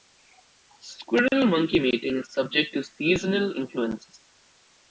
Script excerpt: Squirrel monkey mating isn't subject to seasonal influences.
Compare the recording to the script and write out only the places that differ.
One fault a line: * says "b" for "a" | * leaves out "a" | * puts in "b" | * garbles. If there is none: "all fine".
* says "is" for "isn't"